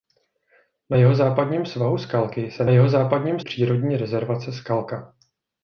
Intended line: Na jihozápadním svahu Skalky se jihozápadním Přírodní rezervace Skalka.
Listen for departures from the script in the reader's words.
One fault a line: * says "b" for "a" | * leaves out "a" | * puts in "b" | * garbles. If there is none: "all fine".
all fine